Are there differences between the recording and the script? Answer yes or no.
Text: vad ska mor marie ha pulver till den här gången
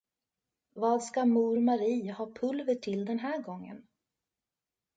no